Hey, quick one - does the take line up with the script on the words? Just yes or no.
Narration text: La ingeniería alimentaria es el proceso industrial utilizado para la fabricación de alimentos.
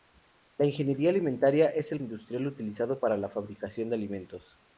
no